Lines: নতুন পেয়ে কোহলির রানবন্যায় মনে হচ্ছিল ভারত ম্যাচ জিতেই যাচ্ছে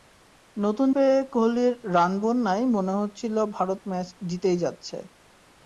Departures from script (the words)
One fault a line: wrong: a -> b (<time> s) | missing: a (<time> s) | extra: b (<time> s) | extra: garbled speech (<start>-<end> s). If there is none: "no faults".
no faults